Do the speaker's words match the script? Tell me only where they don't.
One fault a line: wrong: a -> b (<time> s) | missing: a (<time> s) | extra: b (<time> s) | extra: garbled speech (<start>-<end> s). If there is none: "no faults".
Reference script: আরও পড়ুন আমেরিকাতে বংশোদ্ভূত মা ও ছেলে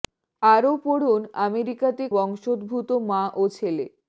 no faults